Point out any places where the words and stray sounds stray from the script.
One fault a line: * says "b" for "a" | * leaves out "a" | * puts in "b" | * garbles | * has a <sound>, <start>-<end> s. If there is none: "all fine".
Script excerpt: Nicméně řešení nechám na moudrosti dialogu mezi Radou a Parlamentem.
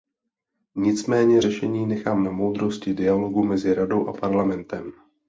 all fine